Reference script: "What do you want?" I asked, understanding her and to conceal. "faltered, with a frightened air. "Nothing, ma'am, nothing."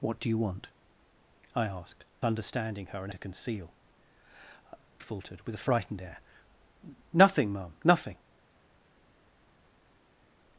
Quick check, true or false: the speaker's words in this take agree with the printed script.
true